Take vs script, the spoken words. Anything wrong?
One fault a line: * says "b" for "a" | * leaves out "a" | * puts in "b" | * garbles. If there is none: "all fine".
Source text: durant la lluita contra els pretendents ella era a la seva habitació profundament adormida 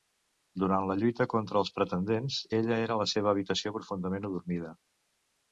all fine